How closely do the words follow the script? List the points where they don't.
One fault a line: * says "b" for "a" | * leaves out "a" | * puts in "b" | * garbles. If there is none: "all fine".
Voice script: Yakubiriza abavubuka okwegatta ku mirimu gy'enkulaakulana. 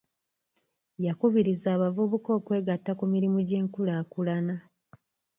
all fine